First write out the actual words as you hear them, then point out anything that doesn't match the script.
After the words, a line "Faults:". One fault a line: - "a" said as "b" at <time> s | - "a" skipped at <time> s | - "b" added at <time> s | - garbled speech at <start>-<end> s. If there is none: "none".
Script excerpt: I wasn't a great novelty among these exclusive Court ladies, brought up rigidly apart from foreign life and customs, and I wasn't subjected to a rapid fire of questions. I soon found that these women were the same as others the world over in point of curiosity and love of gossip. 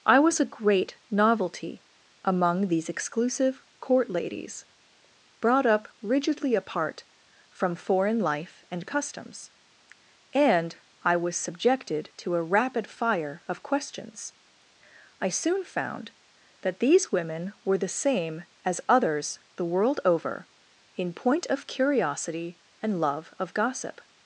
I was a great novelty among these exclusive Court ladies, brought up rigidly apart from foreign life and customs, and I was subjected to a rapid fire of questions. I soon found that these women were the same as others the world over in point of curiosity and love of gossip.
Faults:
- "wasn't" said as "was" at 0.2 s
- "wasn't" said as "was" at 11.2 s